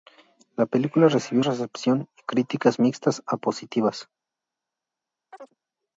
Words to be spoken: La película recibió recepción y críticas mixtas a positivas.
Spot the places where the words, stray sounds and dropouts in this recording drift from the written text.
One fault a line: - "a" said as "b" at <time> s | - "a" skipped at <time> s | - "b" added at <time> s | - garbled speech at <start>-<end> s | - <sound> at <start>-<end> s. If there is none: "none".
- chirp at 5.3-5.5 s